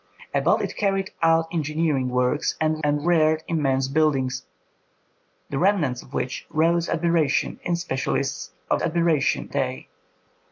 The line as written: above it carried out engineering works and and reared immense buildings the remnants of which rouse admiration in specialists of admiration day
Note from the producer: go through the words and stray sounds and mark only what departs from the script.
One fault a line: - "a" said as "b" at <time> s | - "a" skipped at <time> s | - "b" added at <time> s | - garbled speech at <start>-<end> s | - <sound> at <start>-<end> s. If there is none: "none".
none